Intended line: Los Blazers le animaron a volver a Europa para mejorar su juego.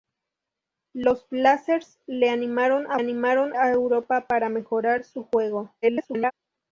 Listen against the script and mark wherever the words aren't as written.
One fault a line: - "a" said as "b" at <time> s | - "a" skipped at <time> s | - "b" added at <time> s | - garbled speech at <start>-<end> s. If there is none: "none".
- "volver" said as "animaron" at 3.0 s
- garbled speech at 5.8-6.3 s